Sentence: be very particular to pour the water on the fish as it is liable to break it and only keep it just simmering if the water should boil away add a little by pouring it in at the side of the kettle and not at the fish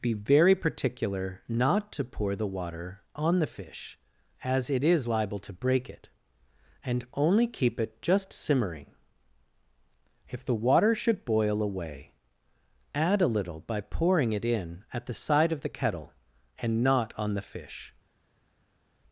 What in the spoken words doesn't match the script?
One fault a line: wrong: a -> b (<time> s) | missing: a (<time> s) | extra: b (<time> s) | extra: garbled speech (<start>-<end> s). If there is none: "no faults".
extra: not (1.5 s)
wrong: at -> on (17.2 s)